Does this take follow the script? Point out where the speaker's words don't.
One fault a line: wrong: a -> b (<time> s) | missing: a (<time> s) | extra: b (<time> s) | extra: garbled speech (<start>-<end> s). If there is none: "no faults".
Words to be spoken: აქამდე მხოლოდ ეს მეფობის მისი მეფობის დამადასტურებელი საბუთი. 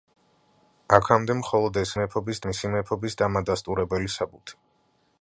no faults